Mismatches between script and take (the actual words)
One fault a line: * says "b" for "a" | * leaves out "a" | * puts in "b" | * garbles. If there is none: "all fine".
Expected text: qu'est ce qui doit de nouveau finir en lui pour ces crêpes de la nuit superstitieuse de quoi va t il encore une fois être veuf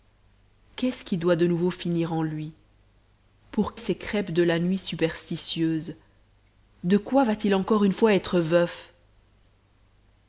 all fine